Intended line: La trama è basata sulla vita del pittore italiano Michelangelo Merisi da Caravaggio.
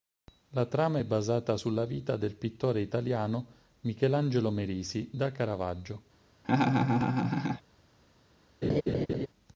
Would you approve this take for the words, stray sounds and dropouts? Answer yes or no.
no